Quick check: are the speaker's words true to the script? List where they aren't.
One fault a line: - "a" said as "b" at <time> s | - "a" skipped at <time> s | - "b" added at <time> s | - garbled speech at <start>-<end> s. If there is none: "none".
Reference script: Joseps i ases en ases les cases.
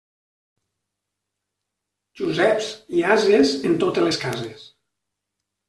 - "ases" said as "totes" at 3.9 s